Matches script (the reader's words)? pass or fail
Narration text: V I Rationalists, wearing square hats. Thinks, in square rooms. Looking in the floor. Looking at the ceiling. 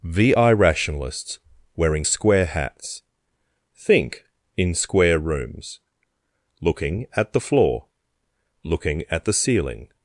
fail